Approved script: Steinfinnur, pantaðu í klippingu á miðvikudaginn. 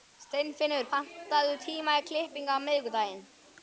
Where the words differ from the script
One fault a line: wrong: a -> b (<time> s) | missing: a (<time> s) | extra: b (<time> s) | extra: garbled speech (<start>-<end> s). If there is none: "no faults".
extra: tíma (1.6 s)